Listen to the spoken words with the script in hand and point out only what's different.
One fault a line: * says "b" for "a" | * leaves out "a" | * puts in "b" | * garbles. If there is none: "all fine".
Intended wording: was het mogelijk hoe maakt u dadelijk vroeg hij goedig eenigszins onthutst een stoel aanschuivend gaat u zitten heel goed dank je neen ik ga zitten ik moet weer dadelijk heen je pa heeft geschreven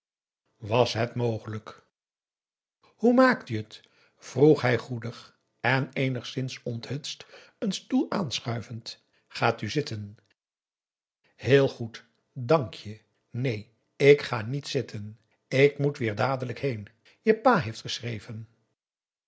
* says "het" for "dadelijk"
* puts in "en"
* puts in "niet"